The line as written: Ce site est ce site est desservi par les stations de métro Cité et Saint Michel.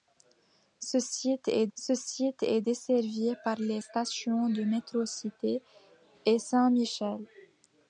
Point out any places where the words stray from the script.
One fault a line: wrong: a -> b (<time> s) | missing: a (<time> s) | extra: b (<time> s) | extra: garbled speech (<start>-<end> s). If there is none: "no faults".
no faults